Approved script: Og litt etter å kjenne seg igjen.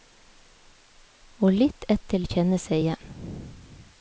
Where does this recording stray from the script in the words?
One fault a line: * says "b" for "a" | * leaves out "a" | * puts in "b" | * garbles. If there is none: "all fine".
all fine